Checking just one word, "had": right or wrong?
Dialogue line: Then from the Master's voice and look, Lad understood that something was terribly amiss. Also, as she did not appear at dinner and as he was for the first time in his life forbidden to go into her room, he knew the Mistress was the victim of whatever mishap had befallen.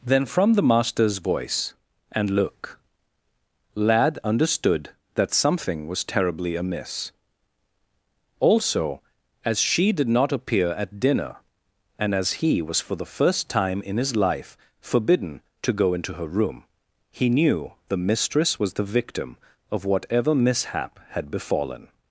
right